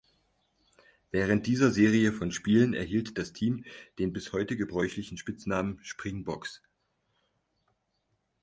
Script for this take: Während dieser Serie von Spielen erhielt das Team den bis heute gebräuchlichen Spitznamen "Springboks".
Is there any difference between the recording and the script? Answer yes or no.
no